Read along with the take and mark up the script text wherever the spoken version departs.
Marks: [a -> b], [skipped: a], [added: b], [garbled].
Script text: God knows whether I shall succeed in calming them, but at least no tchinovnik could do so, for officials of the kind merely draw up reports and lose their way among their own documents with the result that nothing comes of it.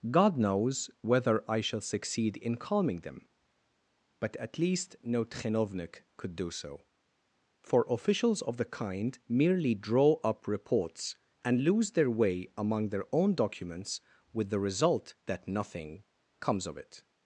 God knows whether I shall succeed in calming them, but at least no tchinovnik could do so, for officials of the kind merely draw up reports and lose their way among their own documents with the result that nothing comes of it.